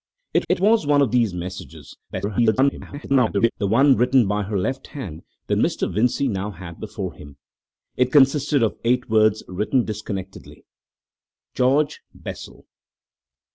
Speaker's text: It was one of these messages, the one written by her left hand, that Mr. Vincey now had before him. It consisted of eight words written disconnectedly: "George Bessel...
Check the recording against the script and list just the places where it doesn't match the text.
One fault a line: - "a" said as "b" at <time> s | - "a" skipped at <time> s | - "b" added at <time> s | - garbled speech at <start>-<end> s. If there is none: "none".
- "it" added at 0.5 s
- garbled speech at 2.1-3.5 s